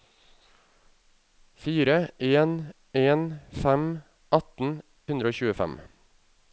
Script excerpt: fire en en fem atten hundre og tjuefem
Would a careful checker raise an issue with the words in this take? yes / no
no